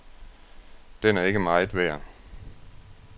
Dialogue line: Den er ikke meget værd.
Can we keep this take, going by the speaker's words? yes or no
yes